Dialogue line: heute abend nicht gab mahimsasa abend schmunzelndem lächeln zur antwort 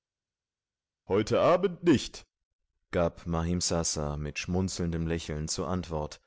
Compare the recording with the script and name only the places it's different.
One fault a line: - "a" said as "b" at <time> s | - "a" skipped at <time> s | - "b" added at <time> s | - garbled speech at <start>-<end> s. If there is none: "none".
- "abend" said as "mit" at 4.2 s